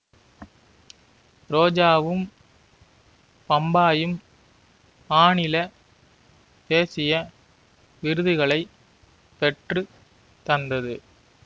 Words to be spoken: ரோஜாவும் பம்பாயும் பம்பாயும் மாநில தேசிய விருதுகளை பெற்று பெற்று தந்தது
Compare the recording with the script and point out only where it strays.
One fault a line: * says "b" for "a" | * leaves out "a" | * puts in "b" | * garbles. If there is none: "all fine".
* leaves out "பம்பாயும்"
* leaves out "பெற்று"